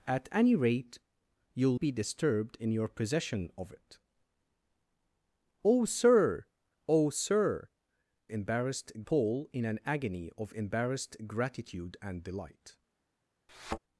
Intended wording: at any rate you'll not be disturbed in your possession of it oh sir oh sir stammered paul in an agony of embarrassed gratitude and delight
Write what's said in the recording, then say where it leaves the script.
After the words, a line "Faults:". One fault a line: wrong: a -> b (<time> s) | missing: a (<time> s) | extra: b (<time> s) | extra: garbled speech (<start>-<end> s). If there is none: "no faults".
at any rate you'll be disturbed in your possession of it oh sir oh sir embarrassed paul in an agony of embarrassed gratitude and delight
Faults:
missing: not (1.8 s)
wrong: stammered -> embarrassed (8.3 s)